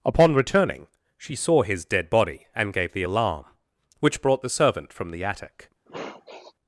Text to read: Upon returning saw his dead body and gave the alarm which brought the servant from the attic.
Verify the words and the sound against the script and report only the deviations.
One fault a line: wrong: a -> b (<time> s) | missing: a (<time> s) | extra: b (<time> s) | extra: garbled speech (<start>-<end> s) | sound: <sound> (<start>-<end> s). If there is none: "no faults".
extra: she (1.2 s)
sound: sniff (5.9-6.5 s)